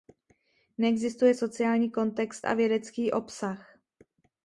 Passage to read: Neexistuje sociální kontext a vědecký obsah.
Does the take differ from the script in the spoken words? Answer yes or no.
no